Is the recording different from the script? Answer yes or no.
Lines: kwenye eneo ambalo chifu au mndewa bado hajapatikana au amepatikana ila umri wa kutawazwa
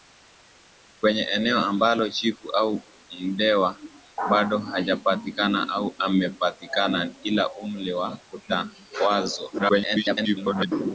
yes